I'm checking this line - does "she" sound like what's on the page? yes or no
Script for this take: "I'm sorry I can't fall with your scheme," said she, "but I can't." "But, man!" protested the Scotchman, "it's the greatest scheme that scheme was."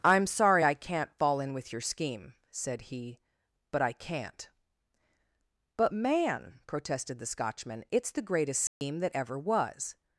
no